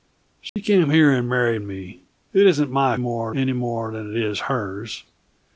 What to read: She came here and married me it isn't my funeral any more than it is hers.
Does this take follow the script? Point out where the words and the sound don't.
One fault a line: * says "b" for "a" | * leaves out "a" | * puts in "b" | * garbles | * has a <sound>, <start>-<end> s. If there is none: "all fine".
* has a dropout, 0.5-0.6 s
* says "more" for "funeral"